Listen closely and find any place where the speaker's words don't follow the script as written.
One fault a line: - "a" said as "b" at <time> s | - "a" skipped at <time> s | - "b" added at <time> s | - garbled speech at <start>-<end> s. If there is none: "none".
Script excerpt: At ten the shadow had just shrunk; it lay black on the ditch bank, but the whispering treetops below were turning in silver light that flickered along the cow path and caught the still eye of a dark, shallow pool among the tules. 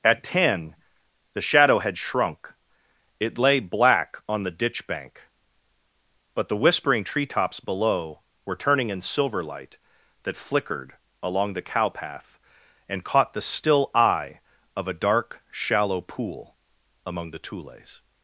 - "just" skipped at 2.0 s